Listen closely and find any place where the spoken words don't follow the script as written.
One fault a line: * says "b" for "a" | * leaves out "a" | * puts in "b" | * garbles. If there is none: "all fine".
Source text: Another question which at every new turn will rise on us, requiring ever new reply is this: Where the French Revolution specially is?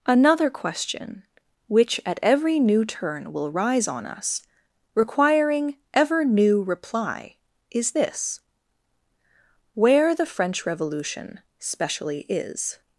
all fine